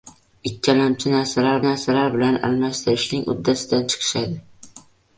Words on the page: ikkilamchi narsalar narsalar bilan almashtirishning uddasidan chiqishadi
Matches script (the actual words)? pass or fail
pass